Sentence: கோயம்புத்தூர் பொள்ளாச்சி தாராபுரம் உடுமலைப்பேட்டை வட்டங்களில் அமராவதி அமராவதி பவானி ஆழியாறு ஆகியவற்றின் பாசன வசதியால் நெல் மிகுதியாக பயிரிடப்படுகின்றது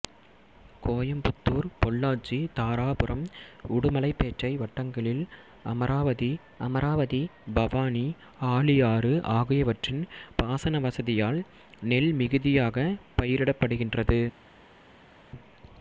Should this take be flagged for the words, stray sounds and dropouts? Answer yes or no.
no